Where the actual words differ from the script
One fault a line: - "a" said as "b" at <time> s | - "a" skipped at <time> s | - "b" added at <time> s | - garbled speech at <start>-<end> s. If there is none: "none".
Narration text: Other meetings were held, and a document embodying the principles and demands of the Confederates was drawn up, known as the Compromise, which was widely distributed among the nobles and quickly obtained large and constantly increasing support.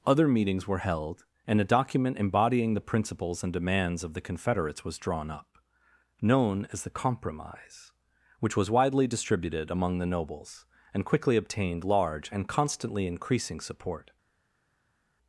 none